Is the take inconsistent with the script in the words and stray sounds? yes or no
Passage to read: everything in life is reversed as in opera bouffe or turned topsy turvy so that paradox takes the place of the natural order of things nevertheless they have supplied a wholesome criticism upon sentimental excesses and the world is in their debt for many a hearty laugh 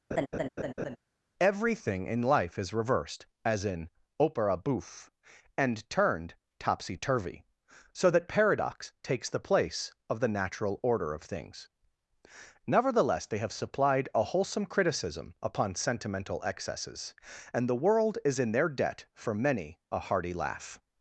yes